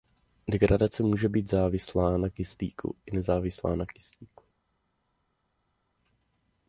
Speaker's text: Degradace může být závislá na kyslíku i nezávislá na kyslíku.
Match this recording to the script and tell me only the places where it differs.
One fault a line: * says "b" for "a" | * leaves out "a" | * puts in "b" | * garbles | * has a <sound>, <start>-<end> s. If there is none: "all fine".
all fine